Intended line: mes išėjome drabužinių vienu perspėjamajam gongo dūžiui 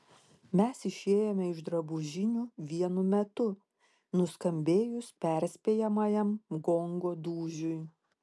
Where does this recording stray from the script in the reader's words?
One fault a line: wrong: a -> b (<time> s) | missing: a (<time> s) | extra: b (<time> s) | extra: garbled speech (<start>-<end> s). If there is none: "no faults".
extra: iš (1.5 s)
extra: metu nuskambėjus (3.1 s)